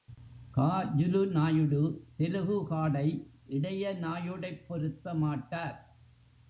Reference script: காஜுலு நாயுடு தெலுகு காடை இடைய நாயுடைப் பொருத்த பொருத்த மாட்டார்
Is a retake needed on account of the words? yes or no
yes